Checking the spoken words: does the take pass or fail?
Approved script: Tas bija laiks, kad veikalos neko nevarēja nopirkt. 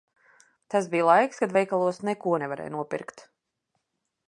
pass